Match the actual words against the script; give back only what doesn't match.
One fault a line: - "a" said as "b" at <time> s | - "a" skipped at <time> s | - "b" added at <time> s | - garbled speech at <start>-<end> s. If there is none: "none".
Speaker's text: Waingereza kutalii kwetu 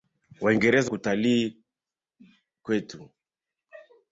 none